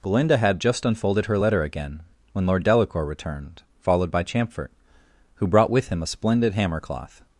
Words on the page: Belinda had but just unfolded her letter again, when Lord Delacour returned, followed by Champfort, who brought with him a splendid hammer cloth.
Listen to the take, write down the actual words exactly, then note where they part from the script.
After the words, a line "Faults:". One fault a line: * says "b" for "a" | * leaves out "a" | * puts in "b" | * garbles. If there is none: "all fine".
Belinda had just unfolded her letter again, when Lord Delacour returned, followed by Champfort, who brought with him a splendid hammer cloth.
Faults:
* leaves out "but"